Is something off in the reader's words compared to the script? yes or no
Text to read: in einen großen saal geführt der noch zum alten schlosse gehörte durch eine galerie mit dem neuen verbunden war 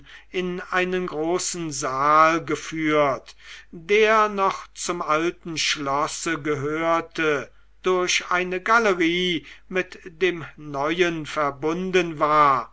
no